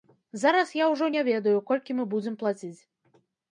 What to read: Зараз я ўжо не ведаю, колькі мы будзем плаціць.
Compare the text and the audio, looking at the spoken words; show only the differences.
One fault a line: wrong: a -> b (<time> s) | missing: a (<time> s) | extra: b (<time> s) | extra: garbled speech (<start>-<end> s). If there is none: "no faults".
no faults